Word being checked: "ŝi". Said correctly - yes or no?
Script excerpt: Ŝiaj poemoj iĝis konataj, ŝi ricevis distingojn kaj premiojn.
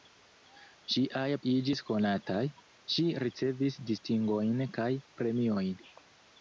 yes